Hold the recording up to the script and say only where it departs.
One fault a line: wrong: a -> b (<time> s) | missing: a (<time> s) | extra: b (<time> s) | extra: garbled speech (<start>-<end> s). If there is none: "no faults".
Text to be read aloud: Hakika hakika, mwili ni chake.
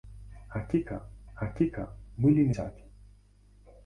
no faults